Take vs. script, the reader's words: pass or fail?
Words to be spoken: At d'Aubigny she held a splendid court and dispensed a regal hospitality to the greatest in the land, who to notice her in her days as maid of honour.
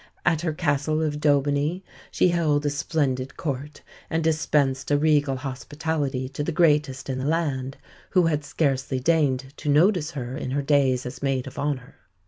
fail